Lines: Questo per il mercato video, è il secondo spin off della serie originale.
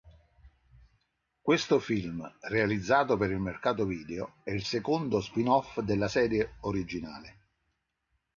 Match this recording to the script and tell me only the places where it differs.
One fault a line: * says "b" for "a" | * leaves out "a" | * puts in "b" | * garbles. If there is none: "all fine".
* puts in "film realizzato"